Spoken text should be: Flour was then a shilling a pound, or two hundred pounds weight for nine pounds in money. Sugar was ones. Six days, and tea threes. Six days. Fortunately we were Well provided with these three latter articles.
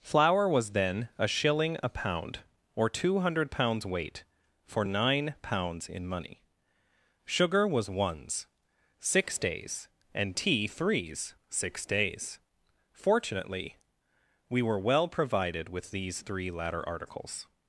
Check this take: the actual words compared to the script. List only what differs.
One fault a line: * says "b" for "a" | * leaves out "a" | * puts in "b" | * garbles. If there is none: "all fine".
all fine